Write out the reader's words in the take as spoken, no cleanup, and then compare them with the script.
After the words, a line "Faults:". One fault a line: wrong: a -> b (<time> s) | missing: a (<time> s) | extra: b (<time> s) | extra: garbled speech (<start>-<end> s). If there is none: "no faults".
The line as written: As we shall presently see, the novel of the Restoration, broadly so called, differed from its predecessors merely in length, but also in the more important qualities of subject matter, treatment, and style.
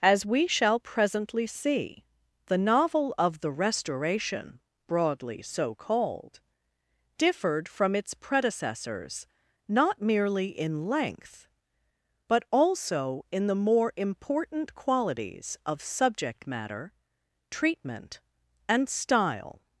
As we shall presently see, the novel of the Restoration, broadly so called, differed from its predecessors not merely in length, but also in the more important qualities of subject matter, treatment, and style.
Faults:
extra: not (9.7 s)